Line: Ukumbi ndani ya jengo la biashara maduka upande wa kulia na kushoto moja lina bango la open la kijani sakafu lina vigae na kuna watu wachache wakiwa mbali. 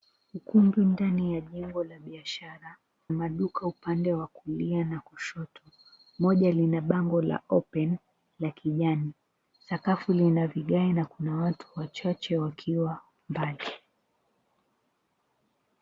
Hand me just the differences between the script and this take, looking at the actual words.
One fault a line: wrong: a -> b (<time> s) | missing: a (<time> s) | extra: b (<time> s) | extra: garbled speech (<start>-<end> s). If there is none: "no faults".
no faults